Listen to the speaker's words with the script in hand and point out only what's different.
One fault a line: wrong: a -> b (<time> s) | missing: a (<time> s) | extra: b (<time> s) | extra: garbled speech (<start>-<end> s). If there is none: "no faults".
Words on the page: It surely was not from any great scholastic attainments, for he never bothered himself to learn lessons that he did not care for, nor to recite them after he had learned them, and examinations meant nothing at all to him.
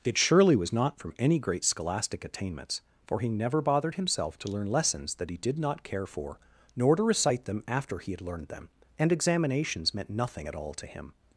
no faults